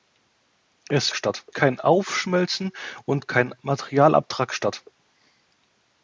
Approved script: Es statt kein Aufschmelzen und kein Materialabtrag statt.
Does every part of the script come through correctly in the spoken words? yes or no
yes